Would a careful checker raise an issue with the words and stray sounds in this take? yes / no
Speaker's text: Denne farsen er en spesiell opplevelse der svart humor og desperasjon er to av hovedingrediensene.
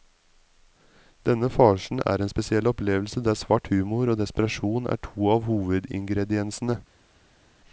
no